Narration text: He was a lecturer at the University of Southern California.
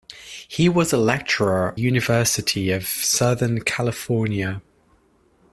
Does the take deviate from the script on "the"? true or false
true